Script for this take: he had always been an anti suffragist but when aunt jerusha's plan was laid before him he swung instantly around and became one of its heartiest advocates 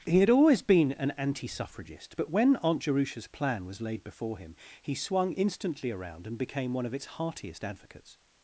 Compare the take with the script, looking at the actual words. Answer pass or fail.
pass